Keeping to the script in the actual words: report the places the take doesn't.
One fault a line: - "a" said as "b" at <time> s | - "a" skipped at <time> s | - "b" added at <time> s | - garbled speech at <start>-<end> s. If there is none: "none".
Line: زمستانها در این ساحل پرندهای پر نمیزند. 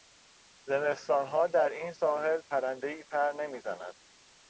none